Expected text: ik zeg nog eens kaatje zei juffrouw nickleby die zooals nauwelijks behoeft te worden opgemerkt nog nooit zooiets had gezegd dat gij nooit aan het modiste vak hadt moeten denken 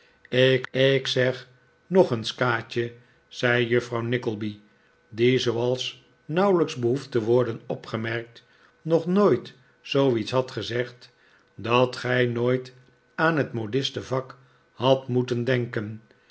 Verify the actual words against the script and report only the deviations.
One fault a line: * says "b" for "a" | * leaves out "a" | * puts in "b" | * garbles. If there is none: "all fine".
* puts in "ik"